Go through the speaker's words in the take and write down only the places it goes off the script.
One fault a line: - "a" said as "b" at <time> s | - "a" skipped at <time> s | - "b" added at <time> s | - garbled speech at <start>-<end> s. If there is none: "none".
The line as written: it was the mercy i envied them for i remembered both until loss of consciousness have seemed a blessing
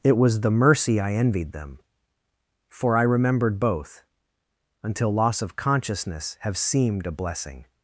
none